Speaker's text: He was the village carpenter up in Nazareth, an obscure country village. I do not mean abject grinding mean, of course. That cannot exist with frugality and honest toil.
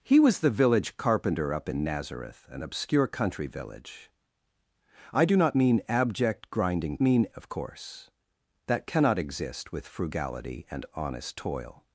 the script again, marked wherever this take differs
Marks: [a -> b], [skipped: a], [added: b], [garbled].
He was the village carpenter up in Nazareth, an obscure country village. I do not mean abject grinding mean, of course. That cannot exist with frugality and honest toil.